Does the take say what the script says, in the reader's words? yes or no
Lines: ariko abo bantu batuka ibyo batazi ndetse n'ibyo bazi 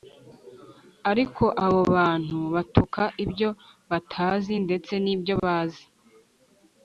yes